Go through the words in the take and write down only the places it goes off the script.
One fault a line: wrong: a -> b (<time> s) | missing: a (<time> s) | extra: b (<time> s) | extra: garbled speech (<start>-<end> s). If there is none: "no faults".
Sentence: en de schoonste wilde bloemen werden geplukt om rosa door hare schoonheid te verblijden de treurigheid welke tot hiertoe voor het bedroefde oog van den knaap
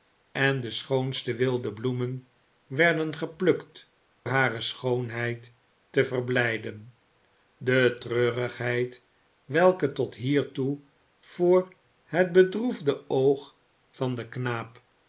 missing: om rosa door (3.9 s)